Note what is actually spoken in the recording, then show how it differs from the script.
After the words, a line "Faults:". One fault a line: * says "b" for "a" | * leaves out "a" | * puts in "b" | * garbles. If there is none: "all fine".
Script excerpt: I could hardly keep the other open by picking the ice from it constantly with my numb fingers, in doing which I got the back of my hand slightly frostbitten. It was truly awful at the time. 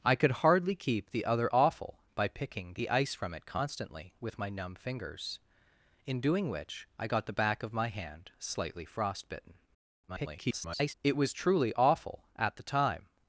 I could hardly keep the other awful by picking the ice from it constantly with my numb fingers, in doing which I got the back of my hand slightly frostbitten. [garbled] It was truly awful at the time.
Faults:
* says "awful" for "open"
* garbles